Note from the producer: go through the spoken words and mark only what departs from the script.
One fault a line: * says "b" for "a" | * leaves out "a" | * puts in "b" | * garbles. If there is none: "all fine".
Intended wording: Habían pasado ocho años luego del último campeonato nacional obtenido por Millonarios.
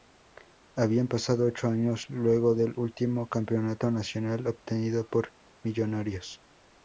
all fine